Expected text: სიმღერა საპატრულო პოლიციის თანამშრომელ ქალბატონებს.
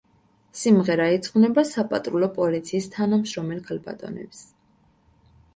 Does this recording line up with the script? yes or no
no